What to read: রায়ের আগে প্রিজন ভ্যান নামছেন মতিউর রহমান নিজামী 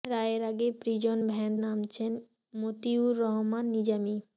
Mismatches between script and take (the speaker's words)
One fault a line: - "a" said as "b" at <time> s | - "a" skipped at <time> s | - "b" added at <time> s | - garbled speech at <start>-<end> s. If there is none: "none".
none